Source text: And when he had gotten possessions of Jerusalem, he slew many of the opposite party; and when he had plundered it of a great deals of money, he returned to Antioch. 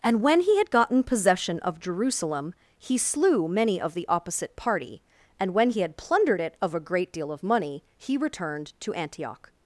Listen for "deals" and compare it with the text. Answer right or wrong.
wrong